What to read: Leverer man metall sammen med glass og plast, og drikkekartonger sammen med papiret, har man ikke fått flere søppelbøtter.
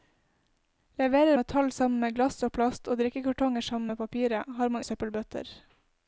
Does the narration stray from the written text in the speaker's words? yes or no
yes